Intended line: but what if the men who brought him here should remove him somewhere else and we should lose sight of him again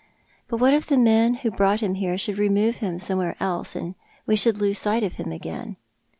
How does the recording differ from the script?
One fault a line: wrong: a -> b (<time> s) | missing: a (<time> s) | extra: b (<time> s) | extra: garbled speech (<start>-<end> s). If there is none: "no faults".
no faults